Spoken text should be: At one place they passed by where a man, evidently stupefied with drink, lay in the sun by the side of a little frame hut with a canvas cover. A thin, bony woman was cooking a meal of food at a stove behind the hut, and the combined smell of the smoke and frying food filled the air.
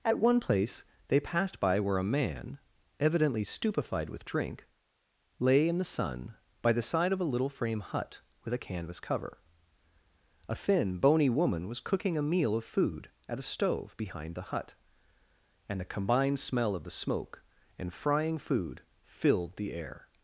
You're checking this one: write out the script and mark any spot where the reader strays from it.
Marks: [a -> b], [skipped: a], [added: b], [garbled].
At one place they passed by where a man, evidently stupefied with drink, lay in the sun by the side of a little frame hut with a canvas cover. A thin, bony woman was cooking a meal of food at a stove behind the hut, and the combined smell of the smoke and frying food filled the air.